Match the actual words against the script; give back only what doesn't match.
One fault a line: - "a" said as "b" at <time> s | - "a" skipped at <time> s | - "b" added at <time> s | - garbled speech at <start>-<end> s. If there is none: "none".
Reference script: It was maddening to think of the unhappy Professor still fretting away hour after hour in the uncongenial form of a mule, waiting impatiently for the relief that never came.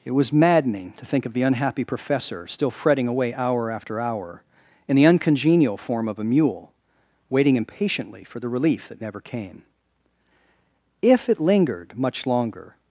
- "If it lingered much longer" added at 11.0 s